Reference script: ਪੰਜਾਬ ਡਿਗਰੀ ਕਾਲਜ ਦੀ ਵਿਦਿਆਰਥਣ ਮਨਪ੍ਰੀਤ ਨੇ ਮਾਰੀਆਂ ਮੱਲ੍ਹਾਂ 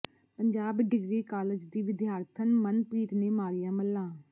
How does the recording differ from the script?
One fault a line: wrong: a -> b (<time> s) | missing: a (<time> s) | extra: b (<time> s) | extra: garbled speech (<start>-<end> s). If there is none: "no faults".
no faults